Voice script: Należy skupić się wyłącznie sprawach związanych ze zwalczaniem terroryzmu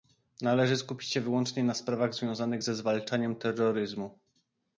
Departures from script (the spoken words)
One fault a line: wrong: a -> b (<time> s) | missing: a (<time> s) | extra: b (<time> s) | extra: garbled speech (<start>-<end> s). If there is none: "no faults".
extra: na (1.6 s)